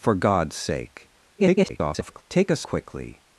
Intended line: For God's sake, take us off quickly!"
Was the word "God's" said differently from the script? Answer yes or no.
no